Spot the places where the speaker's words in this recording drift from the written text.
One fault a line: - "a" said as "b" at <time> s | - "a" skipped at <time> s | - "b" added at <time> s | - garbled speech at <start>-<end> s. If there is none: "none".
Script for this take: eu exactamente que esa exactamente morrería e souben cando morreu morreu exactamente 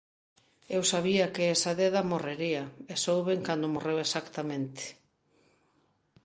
- "exactamente" said as "sabía" at 0.9 s
- "exactamente" said as "deda" at 1.8 s
- "morreu" skipped at 4.0 s